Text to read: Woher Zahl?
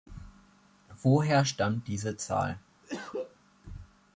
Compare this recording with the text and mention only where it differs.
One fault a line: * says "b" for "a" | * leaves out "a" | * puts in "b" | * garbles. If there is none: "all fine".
* puts in "stammt diese"